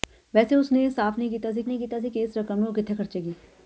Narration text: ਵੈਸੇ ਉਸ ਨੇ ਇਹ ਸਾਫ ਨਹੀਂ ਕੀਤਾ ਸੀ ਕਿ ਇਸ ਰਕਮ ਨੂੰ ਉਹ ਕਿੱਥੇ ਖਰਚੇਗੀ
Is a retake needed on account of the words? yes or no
yes